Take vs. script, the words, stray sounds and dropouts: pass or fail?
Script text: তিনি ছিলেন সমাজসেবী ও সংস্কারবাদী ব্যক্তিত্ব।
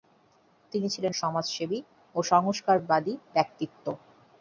pass